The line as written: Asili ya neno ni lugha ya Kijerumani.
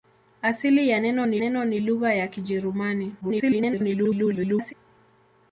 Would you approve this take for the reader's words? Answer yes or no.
no